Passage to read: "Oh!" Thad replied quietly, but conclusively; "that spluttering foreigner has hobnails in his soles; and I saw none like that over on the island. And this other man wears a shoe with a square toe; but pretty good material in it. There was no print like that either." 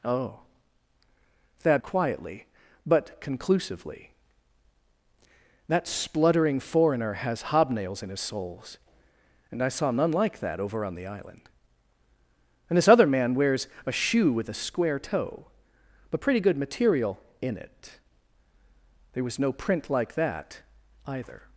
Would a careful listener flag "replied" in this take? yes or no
yes